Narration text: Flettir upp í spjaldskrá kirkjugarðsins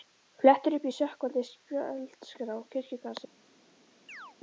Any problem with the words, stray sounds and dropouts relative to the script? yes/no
yes